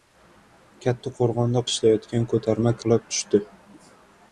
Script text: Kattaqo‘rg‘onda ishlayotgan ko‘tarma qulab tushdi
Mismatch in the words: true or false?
false